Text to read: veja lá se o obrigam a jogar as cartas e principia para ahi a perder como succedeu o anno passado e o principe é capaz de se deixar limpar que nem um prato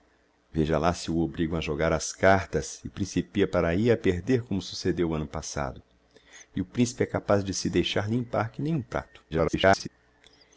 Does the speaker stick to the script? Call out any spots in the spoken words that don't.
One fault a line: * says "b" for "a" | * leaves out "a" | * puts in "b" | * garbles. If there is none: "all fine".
* garbles